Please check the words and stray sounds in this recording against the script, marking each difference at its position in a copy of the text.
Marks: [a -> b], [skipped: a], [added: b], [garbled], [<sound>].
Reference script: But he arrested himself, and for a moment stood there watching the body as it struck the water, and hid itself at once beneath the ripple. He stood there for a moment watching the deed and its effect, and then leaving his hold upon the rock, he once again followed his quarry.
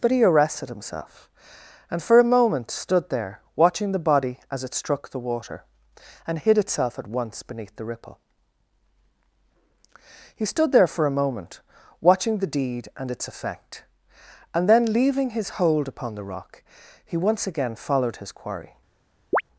But he arrested himself, and for a moment stood there watching the body as it struck the water, and hid itself at once beneath the ripple. He stood there for a moment watching the deed and its effect, and then leaving his hold upon the rock, he once again followed his quarry. [chirp]